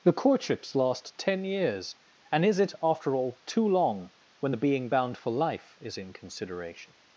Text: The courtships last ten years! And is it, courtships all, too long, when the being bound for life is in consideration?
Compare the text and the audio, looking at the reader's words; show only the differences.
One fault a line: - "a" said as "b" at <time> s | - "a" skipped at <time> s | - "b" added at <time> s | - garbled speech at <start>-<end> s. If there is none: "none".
- "courtships" said as "after" at 2.8 s